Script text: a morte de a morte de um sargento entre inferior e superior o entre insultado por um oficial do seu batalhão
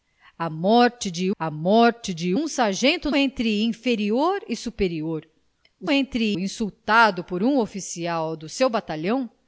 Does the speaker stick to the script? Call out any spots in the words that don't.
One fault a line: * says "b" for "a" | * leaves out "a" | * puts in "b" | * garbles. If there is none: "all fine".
all fine